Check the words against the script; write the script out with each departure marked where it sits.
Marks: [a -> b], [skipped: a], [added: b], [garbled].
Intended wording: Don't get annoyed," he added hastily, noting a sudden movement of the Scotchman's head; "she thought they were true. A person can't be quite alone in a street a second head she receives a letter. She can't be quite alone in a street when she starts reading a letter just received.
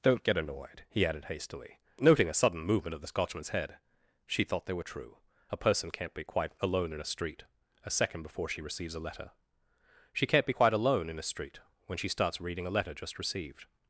Don't get annoyed," he added hastily, noting a sudden movement of the Scotchman's head; "she thought they were true. A person can't be quite alone in a street a second [head -> before] she receives a letter. She can't be quite alone in a street when she starts reading a letter just received.